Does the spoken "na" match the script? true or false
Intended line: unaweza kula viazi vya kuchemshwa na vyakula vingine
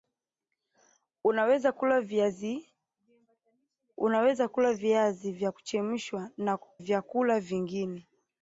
false